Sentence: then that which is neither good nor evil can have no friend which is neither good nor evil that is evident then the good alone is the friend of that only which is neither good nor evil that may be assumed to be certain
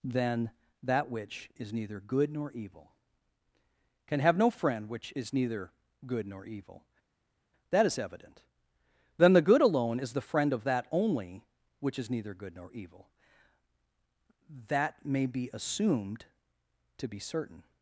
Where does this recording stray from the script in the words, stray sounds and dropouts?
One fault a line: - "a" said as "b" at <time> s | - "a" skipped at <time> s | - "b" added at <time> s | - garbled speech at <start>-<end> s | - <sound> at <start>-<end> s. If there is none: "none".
none